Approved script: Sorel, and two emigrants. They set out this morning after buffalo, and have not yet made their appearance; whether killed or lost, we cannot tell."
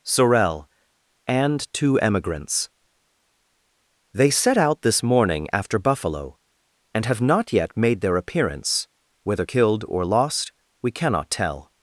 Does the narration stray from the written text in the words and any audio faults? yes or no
no